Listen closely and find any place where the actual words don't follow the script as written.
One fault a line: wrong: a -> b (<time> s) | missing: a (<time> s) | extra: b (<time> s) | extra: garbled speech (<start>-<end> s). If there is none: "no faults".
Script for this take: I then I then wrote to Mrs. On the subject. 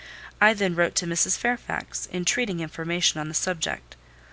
missing: I then (0.7 s)
extra: Fairfax entreating information (1.4 s)